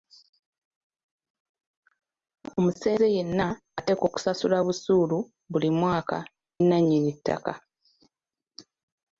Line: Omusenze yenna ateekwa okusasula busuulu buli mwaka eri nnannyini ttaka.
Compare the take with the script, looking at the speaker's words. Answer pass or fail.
fail